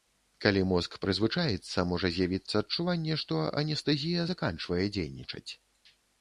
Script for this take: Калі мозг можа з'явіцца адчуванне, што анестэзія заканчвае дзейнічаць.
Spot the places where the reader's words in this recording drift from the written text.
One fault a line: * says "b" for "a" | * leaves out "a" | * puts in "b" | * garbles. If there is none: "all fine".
* puts in "прызвычаіцца"